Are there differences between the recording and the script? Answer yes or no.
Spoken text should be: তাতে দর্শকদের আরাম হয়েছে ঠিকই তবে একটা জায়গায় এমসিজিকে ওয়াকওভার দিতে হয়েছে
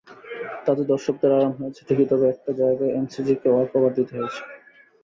no